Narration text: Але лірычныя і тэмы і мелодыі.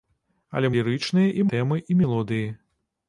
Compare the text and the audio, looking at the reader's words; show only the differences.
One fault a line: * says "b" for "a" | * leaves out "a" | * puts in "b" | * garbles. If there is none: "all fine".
all fine